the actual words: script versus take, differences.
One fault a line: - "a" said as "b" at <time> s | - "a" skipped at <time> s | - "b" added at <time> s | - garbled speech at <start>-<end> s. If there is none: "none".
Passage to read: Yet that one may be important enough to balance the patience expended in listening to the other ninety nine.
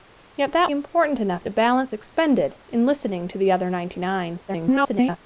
- "one may be" skipped at 0.7 s
- "the patience" skipped at 1.9 s
- garbled speech at 4.5-5.2 s